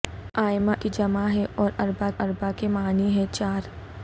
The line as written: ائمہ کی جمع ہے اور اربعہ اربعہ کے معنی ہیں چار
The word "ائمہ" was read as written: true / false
true